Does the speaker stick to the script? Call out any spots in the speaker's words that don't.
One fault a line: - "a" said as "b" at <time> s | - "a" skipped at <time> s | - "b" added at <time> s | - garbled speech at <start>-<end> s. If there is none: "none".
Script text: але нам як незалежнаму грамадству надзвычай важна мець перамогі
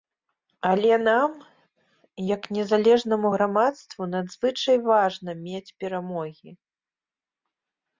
none